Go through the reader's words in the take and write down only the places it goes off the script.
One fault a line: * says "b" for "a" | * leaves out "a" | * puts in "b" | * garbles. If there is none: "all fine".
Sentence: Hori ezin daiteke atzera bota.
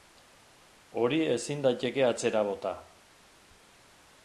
all fine